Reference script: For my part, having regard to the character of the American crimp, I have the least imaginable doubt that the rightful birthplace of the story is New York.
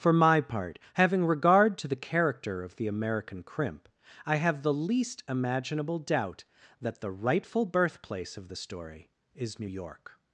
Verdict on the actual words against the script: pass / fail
pass